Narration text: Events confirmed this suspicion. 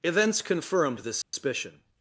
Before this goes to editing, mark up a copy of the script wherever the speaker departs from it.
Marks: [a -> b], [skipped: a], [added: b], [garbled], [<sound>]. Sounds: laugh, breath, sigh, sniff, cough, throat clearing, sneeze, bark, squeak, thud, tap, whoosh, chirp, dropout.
Events confirmed this suspicion. [dropout]